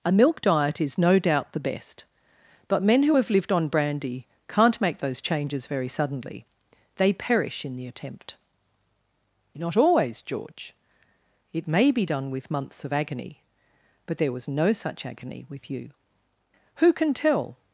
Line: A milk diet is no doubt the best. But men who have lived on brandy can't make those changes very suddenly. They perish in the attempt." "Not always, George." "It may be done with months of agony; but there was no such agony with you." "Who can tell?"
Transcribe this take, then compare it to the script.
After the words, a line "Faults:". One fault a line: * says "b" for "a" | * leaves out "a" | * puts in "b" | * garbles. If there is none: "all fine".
A milk diet is no doubt the best. But men who have lived on brandy can't make those changes very suddenly. They perish in the attempt." "Not always, George." "It may be done with months of agony; but there was no such agony with you." "Who can tell?"
Faults:
all fine